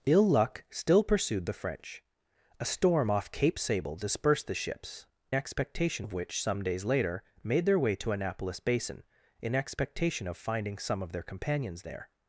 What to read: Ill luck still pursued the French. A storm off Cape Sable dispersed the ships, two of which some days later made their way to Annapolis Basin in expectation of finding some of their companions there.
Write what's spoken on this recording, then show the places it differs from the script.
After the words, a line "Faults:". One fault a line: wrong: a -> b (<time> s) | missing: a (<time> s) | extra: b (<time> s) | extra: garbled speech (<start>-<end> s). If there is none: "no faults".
Ill luck still pursued the French. A storm off Cape Sable dispersed the ships, expectation of which some days later made their way to Annapolis Basin in expectation of finding some of their companions there.
Faults:
wrong: two -> expectation (5.3 s)